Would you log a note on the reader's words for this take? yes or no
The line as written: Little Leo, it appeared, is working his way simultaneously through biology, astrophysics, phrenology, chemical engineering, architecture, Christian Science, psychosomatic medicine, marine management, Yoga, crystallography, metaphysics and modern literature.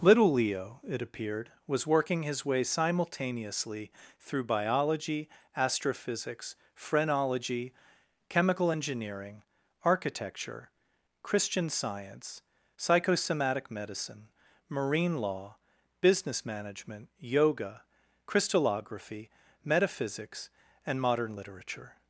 yes